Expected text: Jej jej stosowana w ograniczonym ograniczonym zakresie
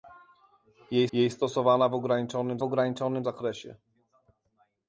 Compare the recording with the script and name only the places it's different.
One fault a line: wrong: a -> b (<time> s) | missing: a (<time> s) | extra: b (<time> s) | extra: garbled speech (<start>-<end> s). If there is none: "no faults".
no faults